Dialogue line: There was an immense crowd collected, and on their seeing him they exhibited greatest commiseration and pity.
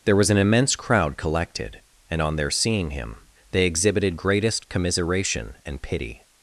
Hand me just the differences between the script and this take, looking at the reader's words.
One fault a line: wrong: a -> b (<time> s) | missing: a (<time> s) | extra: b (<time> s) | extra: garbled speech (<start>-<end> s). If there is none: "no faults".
no faults